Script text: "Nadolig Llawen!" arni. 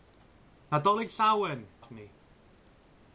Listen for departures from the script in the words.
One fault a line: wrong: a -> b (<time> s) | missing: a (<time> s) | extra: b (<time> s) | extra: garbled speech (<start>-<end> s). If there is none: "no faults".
no faults